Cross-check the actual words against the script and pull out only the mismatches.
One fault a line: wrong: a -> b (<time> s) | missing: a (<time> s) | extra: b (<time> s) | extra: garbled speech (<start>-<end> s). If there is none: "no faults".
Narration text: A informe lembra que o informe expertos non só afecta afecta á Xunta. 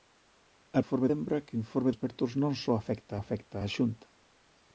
no faults